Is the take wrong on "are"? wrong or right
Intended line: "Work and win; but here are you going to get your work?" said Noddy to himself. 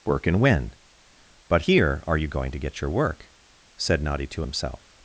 right